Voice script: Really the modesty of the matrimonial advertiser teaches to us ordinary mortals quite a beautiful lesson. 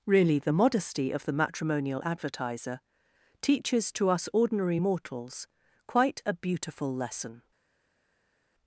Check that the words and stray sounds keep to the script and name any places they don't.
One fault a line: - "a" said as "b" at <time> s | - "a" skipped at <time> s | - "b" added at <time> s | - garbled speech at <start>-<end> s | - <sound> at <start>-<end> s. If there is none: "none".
none